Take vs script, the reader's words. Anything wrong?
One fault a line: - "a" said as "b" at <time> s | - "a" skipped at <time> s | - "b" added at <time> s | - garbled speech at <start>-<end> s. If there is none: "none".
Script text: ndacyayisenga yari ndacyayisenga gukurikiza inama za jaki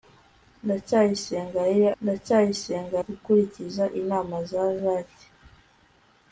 none